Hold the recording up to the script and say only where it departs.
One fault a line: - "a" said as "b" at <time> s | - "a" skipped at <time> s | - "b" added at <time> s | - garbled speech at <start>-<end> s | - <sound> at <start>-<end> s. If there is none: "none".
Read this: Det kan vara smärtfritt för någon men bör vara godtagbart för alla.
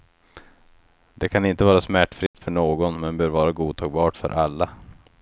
- "inte" added at 1.4 s
- dropout at 2.3-2.3 s